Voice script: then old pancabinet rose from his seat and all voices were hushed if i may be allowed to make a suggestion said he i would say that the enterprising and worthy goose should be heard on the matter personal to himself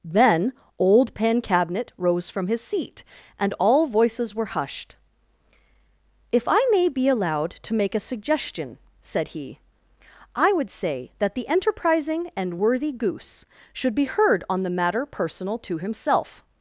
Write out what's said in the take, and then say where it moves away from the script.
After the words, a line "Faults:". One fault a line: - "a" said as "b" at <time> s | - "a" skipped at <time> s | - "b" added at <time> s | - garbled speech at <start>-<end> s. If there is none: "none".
then old pancabinet rose from his seat and all voices were hushed if i may be allowed to make a suggestion said he i would say that the enterprising and worthy goose should be heard on the matter personal to himself
Faults:
none